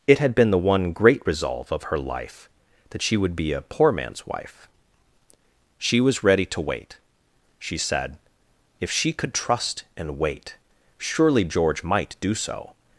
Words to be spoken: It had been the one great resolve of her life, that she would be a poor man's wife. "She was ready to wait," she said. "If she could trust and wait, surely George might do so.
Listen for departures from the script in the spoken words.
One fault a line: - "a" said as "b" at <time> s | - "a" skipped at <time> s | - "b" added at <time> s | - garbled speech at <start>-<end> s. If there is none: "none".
none